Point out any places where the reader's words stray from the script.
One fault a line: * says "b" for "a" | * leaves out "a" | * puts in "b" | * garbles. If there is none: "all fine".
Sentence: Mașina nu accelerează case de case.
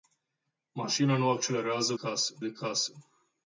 all fine